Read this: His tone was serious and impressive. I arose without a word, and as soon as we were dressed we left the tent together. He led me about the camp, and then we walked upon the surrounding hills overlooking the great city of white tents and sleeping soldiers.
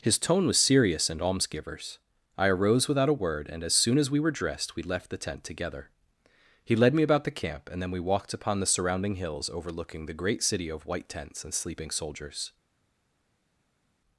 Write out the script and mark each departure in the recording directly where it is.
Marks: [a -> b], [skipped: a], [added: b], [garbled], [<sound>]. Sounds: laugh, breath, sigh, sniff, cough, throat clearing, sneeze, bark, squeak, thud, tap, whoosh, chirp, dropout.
His tone was serious and [impressive. -> almsgivers] I arose without a word, and as soon as we were dressed we left the tent together. He led me about the camp, and then we walked upon the surrounding hills overlooking the great city of white tents and sleeping soldiers.